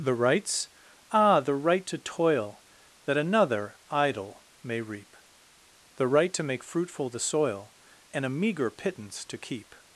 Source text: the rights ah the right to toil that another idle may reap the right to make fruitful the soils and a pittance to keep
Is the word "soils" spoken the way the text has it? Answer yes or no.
no